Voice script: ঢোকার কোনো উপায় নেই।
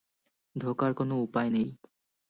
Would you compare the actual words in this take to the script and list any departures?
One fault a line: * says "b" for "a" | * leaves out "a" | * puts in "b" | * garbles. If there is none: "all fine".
all fine